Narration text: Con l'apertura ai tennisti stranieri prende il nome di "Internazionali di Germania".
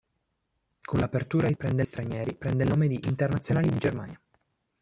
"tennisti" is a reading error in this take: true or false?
true